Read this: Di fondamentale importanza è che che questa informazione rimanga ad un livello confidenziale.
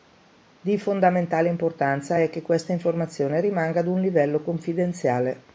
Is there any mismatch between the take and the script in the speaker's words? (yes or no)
yes